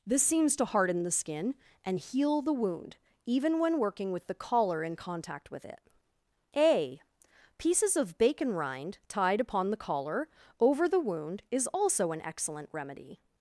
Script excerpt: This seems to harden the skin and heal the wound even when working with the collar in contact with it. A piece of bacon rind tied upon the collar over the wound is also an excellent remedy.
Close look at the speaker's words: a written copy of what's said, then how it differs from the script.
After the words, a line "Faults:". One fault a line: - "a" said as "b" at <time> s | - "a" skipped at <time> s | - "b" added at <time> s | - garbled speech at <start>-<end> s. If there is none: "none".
This seems to harden the skin and heal the wound even when working with the collar in contact with it. A pieces of bacon rind tied upon the collar over the wound is also an excellent remedy.
Faults:
- "piece" said as "pieces" at 7.6 s